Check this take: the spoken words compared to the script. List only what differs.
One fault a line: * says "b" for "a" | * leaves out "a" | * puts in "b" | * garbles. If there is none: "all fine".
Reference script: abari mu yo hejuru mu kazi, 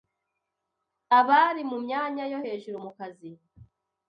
* puts in "myanya"